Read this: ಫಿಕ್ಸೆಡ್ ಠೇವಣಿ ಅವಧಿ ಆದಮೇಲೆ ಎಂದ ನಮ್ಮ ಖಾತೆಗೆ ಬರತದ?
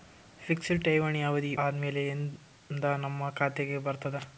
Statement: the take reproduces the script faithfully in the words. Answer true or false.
true